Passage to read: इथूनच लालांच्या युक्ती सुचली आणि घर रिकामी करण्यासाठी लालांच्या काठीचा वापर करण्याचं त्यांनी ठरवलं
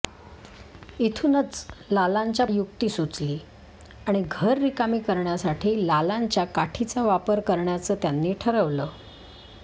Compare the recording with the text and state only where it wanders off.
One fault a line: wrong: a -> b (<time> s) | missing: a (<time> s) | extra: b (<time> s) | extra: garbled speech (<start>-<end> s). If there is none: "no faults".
no faults